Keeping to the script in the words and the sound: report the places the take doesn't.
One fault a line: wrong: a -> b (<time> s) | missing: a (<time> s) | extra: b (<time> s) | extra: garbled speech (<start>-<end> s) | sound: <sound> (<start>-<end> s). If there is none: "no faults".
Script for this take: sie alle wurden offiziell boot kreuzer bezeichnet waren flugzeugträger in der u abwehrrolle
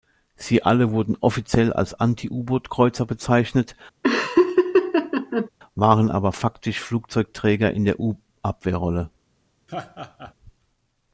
extra: als anti u (1.7 s)
sound: laugh (4.0-5.5 s)
extra: aber faktisch (6.1 s)
sound: laugh (9.7-10.3 s)